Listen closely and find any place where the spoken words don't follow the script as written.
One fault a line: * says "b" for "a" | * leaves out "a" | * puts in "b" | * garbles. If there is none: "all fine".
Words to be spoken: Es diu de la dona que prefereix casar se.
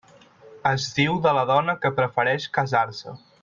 all fine